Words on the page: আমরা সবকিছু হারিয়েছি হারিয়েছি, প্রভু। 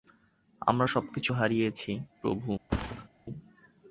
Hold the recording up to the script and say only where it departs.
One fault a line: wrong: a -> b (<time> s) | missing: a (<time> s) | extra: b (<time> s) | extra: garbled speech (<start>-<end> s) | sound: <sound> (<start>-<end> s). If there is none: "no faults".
missing: হারিয়েছি (1.9 s)
sound: thud (2.7-3.1 s)